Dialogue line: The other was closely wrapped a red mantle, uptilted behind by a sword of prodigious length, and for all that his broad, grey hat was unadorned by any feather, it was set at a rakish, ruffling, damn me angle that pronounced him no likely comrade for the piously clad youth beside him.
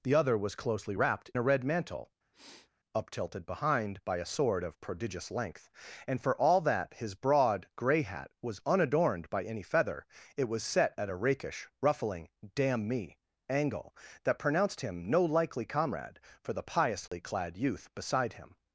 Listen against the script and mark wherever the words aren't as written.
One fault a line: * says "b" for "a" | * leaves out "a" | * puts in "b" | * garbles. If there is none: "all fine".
all fine